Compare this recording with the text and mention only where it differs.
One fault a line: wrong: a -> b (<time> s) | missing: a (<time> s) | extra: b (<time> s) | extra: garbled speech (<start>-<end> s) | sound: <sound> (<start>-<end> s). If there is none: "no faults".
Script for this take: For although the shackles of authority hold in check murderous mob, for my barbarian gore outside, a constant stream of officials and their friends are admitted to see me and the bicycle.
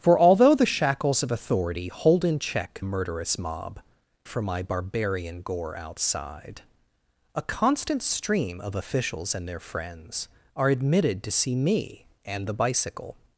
no faults